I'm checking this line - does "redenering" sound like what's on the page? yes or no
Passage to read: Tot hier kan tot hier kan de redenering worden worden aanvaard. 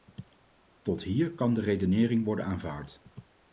yes